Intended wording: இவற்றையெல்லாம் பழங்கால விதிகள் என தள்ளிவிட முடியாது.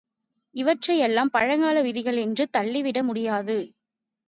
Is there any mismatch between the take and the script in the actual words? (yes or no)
yes